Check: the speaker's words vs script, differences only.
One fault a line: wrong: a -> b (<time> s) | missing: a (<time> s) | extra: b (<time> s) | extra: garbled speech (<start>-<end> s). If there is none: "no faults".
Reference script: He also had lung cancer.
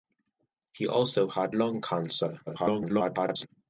extra: garbled speech (2.5-3.5 s)